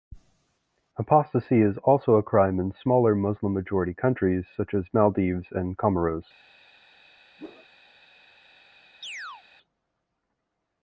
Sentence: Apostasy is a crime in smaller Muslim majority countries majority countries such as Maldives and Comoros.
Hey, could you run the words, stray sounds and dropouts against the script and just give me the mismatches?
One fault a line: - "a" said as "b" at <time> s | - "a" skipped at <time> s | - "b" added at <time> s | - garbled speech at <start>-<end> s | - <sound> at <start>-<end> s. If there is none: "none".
- "also" added at 1.8 s
- "majority countries" skipped at 4.5 s
- whoosh at 7.4-7.7 s
- chirp at 9.0-9.4 s